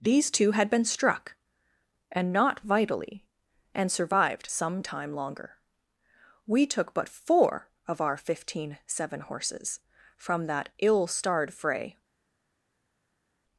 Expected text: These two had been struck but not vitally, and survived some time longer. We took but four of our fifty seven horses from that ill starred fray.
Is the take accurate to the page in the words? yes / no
no